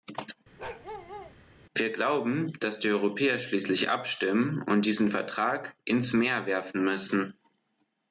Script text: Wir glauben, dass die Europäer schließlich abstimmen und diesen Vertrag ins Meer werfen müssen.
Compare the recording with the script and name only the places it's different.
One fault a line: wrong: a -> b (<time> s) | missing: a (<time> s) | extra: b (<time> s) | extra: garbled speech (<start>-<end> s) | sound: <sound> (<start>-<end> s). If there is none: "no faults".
sound: bark (0.6-1.4 s)